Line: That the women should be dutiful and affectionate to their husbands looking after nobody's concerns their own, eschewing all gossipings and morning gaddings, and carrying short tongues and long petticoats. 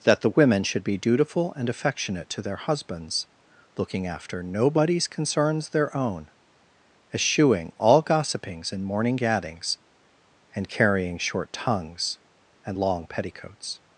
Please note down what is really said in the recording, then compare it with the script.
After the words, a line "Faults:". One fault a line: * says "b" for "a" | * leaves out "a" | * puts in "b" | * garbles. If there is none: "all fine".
That the women should be dutiful and affectionate to their husbands looking after nobody's concerns their own, eschewing all gossipings and morning gaddings, and carrying short tongues and long petticoats.
Faults:
all fine